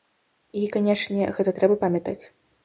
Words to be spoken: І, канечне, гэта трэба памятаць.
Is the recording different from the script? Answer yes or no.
no